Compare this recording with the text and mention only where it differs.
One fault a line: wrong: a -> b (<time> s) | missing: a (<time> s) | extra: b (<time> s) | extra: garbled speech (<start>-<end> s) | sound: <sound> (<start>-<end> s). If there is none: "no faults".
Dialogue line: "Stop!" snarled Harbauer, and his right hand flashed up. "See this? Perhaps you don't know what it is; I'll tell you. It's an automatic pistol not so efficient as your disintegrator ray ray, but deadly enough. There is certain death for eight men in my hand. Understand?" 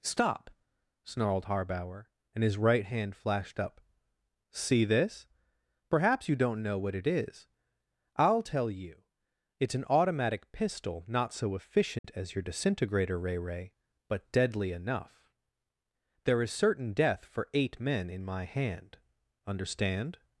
sound: dropout (12.0-12.0 s)